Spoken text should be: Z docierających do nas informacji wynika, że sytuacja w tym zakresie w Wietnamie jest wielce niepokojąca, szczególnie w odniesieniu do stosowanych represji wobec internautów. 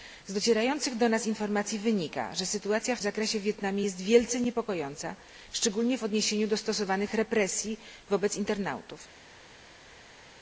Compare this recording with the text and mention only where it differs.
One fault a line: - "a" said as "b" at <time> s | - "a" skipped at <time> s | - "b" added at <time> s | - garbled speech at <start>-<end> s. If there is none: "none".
- "tym" skipped at 3.0 s